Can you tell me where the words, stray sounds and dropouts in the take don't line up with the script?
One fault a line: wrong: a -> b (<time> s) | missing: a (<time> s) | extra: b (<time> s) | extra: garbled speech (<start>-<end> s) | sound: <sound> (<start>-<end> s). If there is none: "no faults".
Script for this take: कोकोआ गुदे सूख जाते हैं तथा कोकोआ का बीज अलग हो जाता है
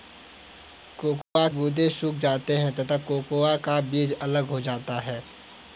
sound: dropout (1.2-1.4 s)